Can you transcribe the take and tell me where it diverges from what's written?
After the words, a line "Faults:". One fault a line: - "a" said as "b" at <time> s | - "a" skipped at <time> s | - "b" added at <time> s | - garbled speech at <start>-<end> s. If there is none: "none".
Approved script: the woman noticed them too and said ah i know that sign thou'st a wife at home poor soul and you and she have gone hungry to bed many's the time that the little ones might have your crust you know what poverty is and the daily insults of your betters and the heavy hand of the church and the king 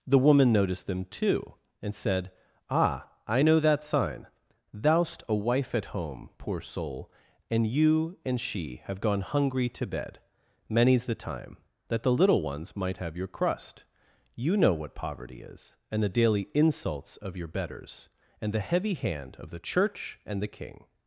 the woman noticed them too and said ah i know that sign thou'st a wife at home poor soul and you and she have gone hungry to bed many's the time that the little ones might have your crust you know what poverty is and the daily insults of your betters and the heavy hand of the church and the king
Faults:
none